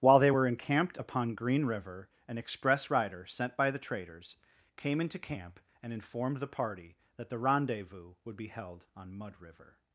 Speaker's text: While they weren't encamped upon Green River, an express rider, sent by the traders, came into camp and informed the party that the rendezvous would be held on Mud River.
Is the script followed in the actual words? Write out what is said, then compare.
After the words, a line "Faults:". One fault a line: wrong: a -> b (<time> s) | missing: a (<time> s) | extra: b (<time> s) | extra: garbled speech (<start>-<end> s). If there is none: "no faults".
While they were encamped upon Green River, an express rider, sent by the traders, came into camp and informed the party that the rendezvous would be held on Mud River.
Faults:
wrong: weren't -> were (0.3 s)